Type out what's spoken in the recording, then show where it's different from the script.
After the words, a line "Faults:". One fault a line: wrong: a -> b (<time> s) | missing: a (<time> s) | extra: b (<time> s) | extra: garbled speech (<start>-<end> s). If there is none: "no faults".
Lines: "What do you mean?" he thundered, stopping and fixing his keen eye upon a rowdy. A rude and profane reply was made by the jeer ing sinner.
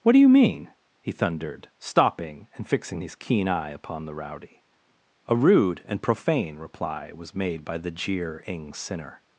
"What do you mean?" he thundered, stopping and fixing his keen eye upon the rowdy. A rude and profane reply was made by the jeer ing sinner.
Faults:
wrong: a -> the (4.0 s)